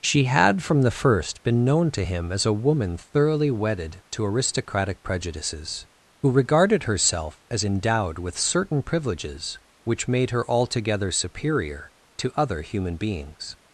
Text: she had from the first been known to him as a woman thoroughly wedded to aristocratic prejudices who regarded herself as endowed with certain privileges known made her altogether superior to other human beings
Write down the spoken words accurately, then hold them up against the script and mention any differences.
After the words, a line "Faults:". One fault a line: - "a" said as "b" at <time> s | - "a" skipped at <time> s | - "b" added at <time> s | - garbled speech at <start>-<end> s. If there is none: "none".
she had from the first been known to him as a woman thoroughly wedded to aristocratic prejudices who regarded herself as endowed with certain privileges which made her altogether superior to other human beings
Faults:
- "known" said as "which" at 9.8 s